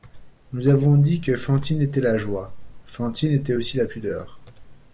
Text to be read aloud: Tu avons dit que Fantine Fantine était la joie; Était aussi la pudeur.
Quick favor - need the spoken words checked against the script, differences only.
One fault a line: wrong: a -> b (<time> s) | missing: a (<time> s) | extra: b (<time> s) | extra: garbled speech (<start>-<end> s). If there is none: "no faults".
wrong: Tu -> Nous (0.5 s)
missing: Fantine (1.8 s)
extra: Fantine (2.9 s)